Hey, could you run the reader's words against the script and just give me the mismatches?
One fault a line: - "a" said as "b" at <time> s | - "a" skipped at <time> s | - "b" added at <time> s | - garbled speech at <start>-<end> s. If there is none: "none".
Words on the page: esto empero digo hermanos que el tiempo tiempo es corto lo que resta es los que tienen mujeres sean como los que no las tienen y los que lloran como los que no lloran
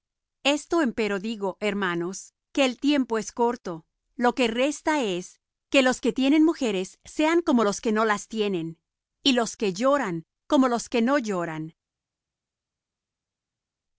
- "tiempo" skipped at 3.2 s
- "que" added at 5.7 s